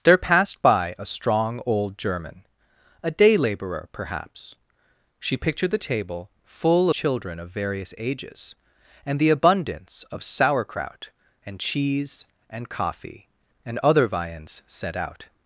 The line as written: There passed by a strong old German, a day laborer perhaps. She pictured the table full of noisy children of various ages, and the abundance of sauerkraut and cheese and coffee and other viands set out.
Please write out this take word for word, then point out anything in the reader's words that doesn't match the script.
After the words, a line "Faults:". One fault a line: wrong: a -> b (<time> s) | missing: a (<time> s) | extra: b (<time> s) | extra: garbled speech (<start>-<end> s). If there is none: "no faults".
There passed by a strong old German, a day laborer perhaps. She pictured the table full children of various ages, and the abundance of sauerkraut and cheese and coffee and other viands set out.
Faults:
missing: of noisy (6.9 s)